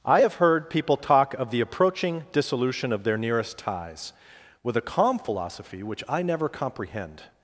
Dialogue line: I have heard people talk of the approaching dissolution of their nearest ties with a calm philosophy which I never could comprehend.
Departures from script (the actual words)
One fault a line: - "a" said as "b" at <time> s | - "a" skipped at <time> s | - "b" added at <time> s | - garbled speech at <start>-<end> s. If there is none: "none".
- "could" skipped at 6.5 s